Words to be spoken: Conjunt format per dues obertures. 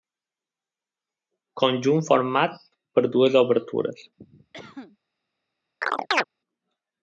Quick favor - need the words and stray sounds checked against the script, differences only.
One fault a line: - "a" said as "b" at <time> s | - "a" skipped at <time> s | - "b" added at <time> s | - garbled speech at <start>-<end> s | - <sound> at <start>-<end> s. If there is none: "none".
- cough at 4.2-5.0 s
- chirp at 5.8-6.2 s